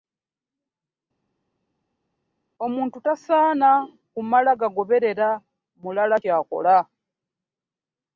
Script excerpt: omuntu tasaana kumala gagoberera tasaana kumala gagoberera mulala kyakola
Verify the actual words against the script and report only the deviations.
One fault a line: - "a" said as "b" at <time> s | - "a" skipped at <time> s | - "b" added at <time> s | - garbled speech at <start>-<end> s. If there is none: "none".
- "tasaana kumala gagoberera" skipped at 5.3 s